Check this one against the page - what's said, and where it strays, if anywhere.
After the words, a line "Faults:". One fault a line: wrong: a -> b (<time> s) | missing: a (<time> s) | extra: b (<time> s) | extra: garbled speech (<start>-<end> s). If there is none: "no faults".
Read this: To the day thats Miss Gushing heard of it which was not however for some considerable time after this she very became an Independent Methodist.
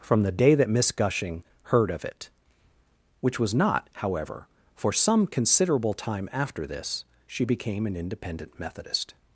From the day that Miss Gushing heard of it which was not however for some considerable time after this she became an Independent Methodist.
Faults:
wrong: To -> From (0.0 s)
wrong: thats -> that (0.6 s)
missing: very (7.5 s)